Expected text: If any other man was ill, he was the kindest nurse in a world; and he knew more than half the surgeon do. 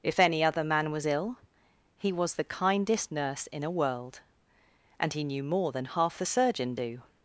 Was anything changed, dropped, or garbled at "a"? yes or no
no